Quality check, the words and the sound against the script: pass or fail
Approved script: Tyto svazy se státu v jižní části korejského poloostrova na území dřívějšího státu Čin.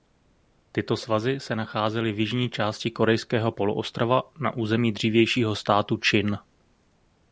fail